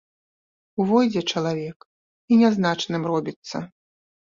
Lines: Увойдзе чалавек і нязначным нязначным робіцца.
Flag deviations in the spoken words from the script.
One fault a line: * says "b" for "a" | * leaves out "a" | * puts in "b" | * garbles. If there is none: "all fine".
* leaves out "нязначным"